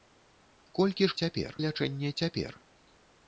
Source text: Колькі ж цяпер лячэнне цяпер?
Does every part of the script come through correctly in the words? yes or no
yes